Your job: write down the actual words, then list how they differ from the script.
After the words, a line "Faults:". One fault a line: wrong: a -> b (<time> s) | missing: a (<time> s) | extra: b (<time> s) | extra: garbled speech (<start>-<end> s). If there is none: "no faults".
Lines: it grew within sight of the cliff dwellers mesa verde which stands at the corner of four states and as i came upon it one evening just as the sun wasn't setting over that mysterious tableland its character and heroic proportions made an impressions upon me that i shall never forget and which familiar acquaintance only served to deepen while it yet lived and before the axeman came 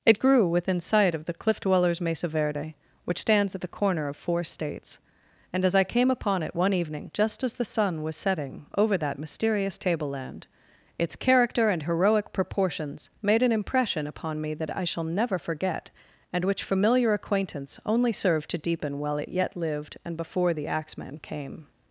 it grew within sight of the cliff dwellers mesa verde which stands at the corner of four states and as i came upon it one evening just as the sun was setting over that mysterious tableland its character and heroic proportions made an impression upon me that i shall never forget and which familiar acquaintance only served to deepen while it yet lived and before the axeman came
Faults:
wrong: wasn't -> was (8.0 s)
wrong: impressions -> impression (13.5 s)